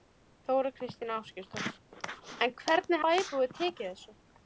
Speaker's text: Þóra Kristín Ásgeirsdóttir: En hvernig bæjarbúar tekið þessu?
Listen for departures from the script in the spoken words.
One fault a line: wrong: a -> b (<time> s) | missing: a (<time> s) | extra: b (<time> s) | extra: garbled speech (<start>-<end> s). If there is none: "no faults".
no faults